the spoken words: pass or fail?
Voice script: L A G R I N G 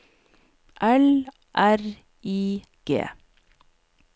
fail